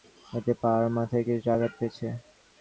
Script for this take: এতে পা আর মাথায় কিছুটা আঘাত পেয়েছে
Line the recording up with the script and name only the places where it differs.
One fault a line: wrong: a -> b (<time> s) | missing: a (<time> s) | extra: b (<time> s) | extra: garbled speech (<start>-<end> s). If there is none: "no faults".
no faults